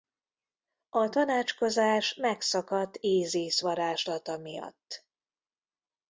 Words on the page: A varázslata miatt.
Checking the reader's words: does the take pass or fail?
fail